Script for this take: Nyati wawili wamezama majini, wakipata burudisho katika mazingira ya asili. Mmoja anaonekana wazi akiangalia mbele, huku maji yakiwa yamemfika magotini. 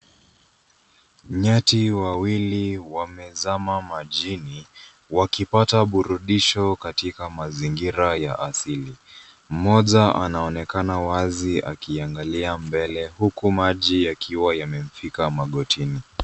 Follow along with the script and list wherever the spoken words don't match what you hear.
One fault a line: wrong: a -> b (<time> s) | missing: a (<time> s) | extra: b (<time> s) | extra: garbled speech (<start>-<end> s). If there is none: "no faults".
no faults